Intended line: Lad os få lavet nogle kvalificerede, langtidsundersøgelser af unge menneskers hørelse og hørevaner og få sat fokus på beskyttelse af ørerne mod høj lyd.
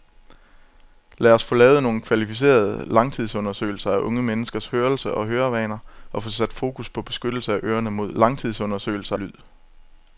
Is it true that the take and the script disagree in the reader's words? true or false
true